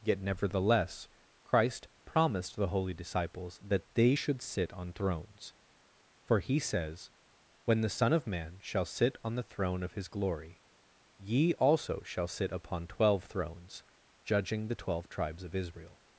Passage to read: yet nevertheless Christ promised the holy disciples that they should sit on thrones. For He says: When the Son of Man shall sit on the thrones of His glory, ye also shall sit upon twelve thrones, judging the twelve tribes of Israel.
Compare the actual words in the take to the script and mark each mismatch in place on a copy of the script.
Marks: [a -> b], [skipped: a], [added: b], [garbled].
yet nevertheless Christ promised the holy disciples that they should sit on thrones. For He says: When the Son of Man shall sit on the [thrones -> throne] of His glory, ye also shall sit upon twelve thrones, judging the twelve tribes of Israel.